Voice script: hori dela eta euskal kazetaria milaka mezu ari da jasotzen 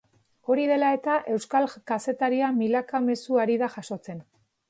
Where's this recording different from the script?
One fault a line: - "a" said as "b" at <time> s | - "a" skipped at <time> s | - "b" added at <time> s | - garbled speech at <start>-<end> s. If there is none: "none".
none